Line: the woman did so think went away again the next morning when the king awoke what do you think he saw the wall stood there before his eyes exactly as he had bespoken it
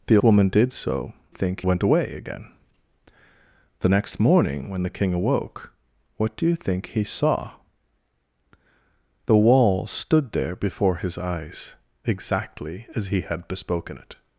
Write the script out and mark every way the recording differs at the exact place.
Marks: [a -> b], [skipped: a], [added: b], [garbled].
the woman did so think went away again the next morning when the king awoke what do you think he saw the wall stood there before his eyes exactly as he had bespoken it